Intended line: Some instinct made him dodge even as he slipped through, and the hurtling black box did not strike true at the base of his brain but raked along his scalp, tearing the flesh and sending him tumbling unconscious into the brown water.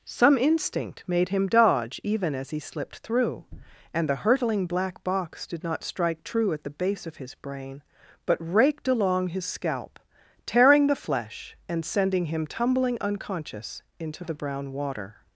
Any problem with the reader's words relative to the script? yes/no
no